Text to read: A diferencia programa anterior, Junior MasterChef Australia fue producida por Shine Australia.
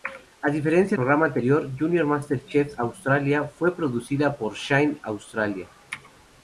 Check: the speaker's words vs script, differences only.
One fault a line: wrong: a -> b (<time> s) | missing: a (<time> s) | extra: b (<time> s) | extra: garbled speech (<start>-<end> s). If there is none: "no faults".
no faults